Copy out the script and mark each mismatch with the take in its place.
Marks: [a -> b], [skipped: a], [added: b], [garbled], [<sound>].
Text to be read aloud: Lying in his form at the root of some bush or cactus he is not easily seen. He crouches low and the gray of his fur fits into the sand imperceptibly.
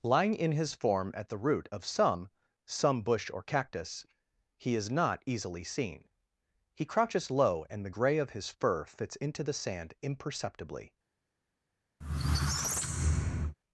Lying in his form at the root of some [added: some] bush or cactus he is not easily seen. He crouches low and the gray of his fur fits into the sand imperceptibly. [squeak]